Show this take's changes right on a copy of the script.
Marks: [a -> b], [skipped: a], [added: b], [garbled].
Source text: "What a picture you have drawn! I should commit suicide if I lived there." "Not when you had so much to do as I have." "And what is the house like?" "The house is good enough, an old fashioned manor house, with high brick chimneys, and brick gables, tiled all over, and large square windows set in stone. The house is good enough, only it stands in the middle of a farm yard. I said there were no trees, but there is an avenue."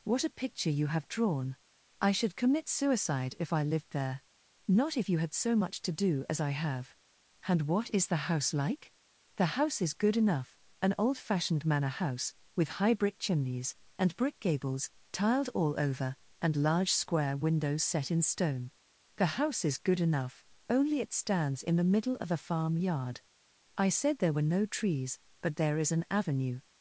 "What a picture you have drawn! I should commit suicide if I lived there." "Not [when -> if] you had so much to do as I have." "And what is the house like?" "The house is good enough, an old fashioned manor house, with high brick chimneys, and brick gables, tiled all over, and large square windows set in stone. The house is good enough, only it stands in the middle of a farm yard. I said there were no trees, but there is an avenue."